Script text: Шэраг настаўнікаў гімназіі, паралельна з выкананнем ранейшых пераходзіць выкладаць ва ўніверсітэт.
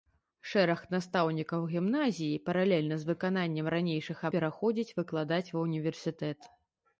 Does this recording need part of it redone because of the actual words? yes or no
no